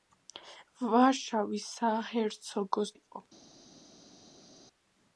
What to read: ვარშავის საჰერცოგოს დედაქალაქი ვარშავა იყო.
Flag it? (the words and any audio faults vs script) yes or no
yes